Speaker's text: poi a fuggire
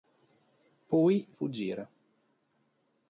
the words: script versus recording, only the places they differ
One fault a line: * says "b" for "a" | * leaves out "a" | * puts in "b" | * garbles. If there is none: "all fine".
all fine